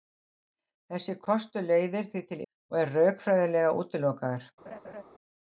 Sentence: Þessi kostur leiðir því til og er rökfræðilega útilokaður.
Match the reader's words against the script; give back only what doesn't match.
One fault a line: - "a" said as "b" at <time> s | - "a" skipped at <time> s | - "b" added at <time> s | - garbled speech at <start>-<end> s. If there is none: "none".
none